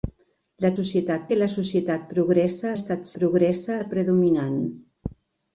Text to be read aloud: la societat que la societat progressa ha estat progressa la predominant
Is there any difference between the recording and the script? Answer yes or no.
no